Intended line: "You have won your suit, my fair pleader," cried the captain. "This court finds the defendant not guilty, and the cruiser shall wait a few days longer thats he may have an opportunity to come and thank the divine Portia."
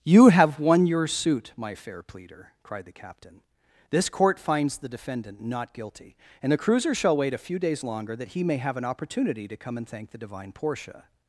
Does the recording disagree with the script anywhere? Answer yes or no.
yes